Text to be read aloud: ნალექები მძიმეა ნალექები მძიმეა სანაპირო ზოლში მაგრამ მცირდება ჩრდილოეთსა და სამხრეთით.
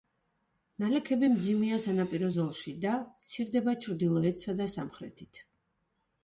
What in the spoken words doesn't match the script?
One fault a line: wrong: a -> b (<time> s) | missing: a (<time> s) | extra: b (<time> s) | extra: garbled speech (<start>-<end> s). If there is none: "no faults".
missing: ნალექები მძიმეა (1.8 s)
wrong: მაგრამ -> და (2.8 s)